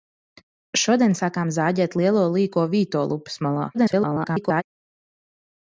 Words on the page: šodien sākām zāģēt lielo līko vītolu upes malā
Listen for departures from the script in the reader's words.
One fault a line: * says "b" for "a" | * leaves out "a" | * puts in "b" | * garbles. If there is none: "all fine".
* garbles